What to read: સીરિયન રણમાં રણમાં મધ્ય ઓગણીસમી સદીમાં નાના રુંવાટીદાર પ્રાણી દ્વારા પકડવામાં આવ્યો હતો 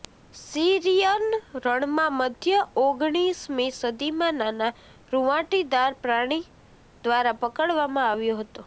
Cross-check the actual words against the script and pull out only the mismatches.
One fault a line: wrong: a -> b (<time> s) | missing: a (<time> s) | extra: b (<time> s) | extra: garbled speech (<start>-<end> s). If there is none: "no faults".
missing: રણમાં (2.1 s)